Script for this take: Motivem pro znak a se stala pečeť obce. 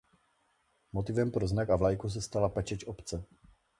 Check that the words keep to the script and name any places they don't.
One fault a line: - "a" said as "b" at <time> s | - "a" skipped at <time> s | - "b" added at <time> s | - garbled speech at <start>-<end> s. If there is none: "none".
- "vlajku" added at 1.8 s